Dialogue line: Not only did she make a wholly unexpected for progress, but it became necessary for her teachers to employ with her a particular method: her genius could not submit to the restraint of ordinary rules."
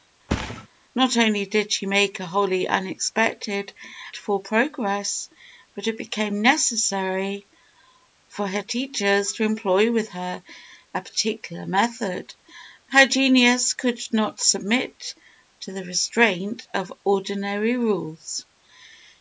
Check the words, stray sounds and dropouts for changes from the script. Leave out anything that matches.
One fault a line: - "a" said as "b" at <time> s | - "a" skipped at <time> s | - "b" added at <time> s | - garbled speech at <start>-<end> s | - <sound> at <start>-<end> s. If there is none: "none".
- thud at 0.3-0.7 s